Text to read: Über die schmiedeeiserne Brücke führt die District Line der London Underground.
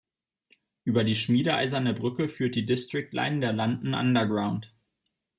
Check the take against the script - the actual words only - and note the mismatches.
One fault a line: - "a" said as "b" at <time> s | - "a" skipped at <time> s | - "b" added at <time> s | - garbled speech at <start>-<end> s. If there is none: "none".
none